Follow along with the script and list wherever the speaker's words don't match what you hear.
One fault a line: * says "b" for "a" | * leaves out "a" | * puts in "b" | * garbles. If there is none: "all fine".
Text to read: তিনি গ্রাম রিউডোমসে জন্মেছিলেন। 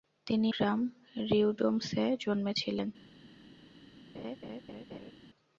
all fine